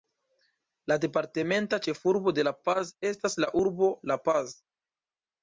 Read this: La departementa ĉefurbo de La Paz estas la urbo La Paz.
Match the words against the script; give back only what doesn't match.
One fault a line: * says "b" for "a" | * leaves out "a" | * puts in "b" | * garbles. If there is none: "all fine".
all fine